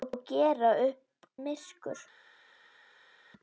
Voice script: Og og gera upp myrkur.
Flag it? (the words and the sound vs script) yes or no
no